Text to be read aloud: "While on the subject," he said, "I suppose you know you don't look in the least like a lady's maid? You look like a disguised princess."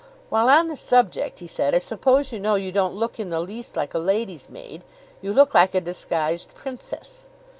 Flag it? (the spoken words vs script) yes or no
no